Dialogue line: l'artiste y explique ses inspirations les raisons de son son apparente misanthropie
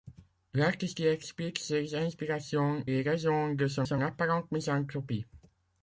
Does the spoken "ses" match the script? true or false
true